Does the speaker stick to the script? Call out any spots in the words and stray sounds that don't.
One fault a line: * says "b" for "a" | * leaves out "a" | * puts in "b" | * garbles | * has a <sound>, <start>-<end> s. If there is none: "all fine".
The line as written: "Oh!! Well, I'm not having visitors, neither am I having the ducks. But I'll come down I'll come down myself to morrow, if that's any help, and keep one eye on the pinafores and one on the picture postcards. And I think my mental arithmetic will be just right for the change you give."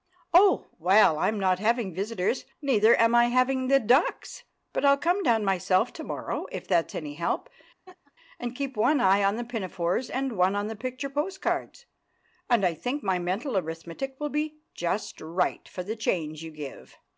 * leaves out "I'll come down"
* has a laugh, 7.9-8.1 s